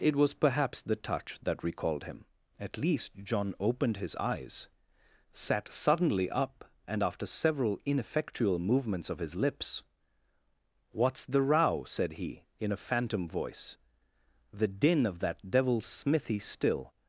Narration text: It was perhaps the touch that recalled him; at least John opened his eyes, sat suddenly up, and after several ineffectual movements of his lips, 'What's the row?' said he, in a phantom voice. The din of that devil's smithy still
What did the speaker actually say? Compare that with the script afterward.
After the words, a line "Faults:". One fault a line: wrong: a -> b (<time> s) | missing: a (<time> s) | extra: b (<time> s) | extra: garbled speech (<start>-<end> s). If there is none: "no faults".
It was perhaps the touch that recalled him; at least John opened his eyes, sat suddenly up, and after several ineffectual movements of his lips, 'What's the row?' said he, in a phantom voice. The din of that devil's smithy still
Faults:
no faults